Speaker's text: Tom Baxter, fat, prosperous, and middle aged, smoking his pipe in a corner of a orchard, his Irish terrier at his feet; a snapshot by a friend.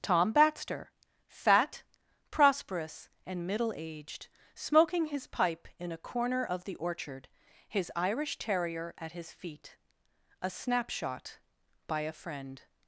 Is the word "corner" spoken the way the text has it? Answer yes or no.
yes